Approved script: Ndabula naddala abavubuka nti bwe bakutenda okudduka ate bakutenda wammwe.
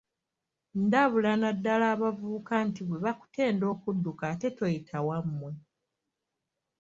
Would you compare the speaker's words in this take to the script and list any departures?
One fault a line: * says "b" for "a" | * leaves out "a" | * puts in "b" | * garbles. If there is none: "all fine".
* says "toyita" for "bakutenda"